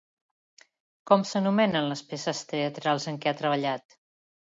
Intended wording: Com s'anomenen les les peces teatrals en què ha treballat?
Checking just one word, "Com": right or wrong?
right